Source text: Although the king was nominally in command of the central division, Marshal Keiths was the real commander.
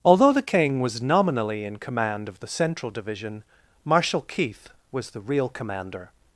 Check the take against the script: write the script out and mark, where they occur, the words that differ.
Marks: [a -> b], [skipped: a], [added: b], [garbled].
Although the king was nominally in command of the central division, Marshal [Keiths -> Keith] was the real commander.